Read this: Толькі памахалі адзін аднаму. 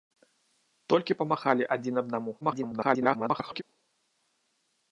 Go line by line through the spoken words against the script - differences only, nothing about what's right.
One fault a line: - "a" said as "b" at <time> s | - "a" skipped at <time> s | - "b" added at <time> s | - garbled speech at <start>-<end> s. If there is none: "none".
- garbled speech at 2.4-3.6 s